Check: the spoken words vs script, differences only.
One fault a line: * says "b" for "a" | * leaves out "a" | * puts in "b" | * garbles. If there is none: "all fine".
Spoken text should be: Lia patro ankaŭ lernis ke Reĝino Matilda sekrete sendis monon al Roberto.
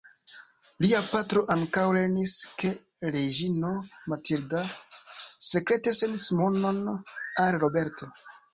all fine